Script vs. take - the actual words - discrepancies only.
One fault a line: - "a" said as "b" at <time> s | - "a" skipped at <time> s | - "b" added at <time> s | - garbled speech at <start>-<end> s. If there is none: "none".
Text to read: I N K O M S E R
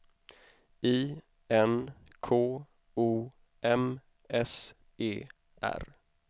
none